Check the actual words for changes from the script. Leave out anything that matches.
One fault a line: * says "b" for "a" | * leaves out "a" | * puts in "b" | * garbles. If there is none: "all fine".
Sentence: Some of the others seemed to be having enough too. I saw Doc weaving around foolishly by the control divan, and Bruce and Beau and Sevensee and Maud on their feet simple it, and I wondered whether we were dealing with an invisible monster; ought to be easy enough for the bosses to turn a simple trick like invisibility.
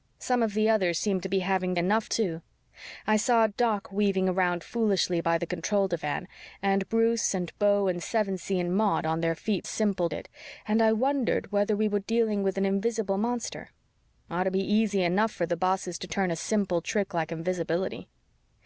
all fine